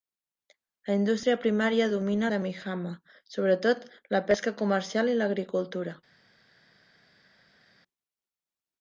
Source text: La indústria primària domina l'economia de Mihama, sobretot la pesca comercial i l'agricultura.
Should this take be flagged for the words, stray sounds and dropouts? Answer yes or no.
yes